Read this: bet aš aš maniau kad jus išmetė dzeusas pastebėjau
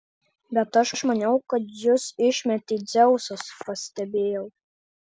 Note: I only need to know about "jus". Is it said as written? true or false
true